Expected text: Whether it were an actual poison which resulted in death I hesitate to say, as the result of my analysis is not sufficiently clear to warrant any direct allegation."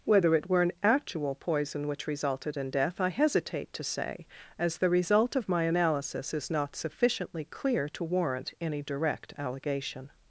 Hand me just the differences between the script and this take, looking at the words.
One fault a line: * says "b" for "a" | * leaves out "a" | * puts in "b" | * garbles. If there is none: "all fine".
all fine